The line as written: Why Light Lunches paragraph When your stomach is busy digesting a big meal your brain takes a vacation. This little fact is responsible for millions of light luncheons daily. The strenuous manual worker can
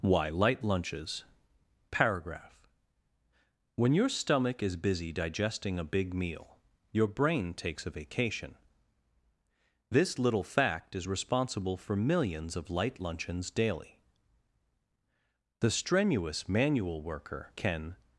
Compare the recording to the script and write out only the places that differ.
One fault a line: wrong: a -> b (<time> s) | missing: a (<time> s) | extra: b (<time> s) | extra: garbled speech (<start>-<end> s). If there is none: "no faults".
no faults